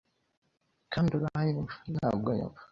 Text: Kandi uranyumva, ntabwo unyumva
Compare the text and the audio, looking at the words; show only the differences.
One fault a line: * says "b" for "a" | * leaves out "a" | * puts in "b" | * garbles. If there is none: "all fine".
all fine